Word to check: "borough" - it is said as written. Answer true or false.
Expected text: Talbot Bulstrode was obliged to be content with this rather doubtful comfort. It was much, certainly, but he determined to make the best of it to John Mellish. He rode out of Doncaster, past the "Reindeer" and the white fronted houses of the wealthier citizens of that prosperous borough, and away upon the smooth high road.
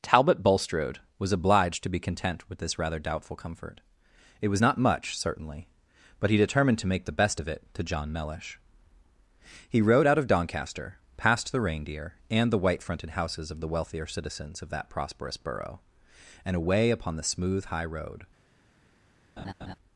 true